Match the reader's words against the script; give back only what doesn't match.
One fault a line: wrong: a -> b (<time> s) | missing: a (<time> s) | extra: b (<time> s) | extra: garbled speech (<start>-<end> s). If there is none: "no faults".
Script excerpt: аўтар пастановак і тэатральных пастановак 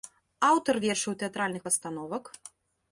wrong: пастановак -> вершаў (0.8 s)